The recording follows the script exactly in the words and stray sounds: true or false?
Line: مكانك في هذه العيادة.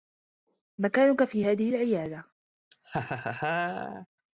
false